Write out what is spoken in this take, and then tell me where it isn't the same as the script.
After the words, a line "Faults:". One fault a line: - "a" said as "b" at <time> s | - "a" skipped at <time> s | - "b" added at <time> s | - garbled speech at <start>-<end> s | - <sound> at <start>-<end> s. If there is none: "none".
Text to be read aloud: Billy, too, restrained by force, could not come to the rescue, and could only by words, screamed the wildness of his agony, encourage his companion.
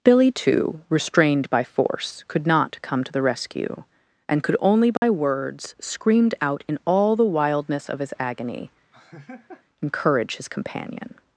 Billy, too, restrained by force, could not come to the rescue, and could only by words, screamed out in all the wildness of his agony, encourage his companion.
Faults:
- dropout at 5.0-5.0 s
- "out in all" added at 6.4 s
- laugh at 8.9-9.6 s